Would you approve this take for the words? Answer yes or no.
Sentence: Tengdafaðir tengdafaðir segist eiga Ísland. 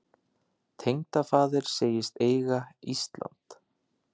no